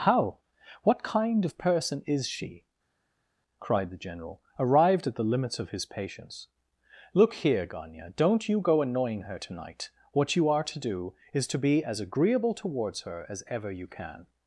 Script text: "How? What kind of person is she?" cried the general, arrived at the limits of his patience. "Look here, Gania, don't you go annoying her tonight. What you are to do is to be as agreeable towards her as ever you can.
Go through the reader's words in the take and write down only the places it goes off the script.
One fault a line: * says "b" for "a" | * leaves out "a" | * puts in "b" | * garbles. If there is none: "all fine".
all fine